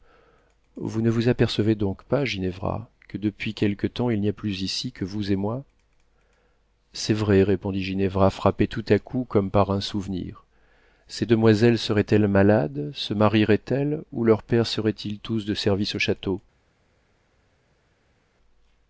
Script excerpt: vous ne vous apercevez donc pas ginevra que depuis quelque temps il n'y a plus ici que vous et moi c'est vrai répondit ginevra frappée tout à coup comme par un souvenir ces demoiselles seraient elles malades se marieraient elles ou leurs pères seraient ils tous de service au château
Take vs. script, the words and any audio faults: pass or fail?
pass